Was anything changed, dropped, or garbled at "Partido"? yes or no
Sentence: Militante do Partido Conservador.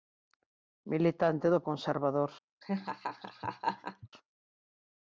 yes